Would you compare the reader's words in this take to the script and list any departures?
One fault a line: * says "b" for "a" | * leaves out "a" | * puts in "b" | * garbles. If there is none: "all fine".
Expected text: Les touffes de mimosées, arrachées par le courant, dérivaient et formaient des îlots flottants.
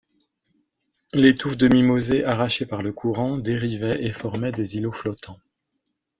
all fine